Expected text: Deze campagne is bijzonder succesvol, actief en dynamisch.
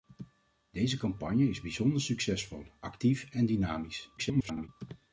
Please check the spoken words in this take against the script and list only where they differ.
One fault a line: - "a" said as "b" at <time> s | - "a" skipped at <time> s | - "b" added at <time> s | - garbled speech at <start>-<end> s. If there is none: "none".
- garbled speech at 4.2-4.7 s